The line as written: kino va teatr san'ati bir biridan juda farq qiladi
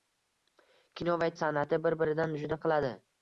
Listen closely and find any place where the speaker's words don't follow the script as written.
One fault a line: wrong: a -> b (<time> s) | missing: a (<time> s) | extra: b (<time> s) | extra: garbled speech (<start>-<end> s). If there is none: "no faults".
missing: teatr (1.3 s)
missing: farq (2.6 s)